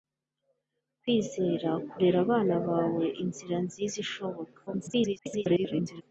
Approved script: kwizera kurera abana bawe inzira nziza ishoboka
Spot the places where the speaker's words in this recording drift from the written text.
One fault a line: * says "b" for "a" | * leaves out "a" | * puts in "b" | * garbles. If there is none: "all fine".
* garbles